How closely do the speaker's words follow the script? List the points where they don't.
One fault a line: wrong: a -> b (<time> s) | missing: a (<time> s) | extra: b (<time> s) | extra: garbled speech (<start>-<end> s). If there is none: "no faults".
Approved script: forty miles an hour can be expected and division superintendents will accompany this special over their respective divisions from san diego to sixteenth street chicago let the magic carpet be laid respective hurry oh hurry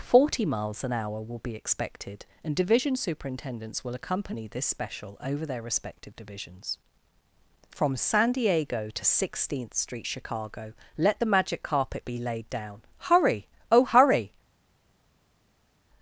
wrong: can -> will (1.2 s)
wrong: respective -> down (12.5 s)